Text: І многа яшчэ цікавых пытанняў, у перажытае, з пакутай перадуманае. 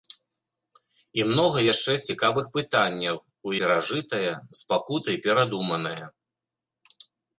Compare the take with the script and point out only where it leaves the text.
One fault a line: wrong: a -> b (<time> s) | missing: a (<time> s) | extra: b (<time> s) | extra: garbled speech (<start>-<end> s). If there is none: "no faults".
no faults